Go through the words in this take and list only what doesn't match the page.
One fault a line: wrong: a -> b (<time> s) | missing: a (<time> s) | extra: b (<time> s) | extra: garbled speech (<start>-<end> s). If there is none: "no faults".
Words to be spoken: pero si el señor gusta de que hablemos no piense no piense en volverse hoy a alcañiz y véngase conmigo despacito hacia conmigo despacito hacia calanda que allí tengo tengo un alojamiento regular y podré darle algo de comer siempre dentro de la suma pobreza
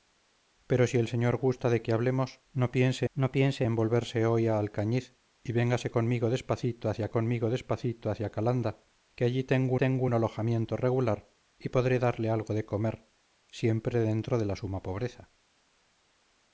no faults